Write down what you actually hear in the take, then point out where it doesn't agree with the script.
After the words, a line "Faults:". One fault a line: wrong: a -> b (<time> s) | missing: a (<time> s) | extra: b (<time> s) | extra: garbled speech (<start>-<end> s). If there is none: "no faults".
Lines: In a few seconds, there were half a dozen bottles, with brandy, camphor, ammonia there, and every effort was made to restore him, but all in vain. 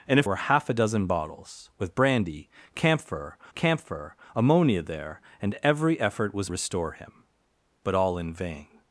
In a were half a dozen bottles, with brandy, camphor camphor, ammonia there, and every effort was restore him, but all in vain.
Faults:
missing: few seconds there (0.2 s)
extra: camphor (3.5 s)
missing: made to (6.5 s)